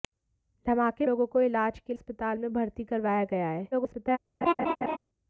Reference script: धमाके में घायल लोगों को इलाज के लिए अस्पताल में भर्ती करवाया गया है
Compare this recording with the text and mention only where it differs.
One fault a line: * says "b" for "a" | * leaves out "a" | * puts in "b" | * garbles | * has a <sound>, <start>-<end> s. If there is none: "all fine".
* leaves out "में घायल"
* leaves out "लिए"
* garbles
* has a laugh, 4.4-5.0 s